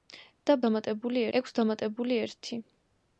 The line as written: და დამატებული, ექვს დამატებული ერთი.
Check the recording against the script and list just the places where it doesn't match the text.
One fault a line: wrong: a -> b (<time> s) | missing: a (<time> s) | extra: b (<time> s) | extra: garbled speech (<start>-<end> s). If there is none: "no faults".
no faults